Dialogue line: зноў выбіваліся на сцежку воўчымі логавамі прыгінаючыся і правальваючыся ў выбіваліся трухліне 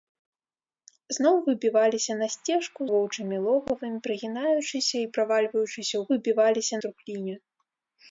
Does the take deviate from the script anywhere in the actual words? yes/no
no